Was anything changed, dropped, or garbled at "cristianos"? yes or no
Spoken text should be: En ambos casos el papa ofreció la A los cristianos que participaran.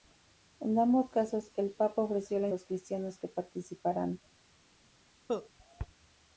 no